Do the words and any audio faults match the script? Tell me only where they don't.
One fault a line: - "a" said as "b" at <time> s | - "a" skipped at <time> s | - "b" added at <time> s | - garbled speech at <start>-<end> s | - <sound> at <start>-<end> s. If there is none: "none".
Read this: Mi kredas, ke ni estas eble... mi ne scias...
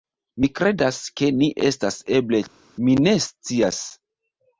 none